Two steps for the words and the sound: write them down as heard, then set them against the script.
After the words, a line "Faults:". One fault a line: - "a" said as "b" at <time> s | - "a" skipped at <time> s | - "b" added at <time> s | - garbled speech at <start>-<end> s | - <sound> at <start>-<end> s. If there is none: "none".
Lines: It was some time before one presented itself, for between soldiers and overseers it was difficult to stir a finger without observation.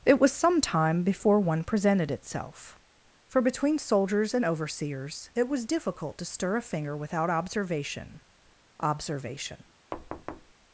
It was some time before one presented itself, for between soldiers and overseers it was difficult to stir a finger without observation observation.
Faults:
- "observation" added at 8.8 s
- thud at 9.9-10.5 s